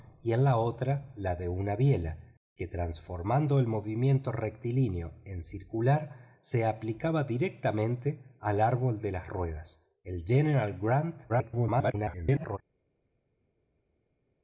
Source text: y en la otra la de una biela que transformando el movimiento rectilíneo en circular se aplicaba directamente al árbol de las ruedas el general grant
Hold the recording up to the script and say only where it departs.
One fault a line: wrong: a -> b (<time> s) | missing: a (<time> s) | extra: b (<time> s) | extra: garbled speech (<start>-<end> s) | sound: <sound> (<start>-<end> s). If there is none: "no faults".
extra: garbled speech (11.3-12.6 s)